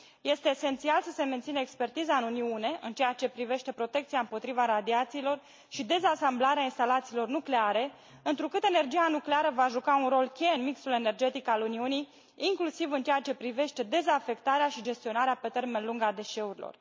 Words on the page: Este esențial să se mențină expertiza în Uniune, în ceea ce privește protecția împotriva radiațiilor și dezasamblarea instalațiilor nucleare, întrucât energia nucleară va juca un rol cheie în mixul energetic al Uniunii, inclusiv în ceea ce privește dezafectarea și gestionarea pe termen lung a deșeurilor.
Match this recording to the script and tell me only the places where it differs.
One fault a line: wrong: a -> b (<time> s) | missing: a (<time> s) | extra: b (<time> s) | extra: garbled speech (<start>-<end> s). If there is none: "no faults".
no faults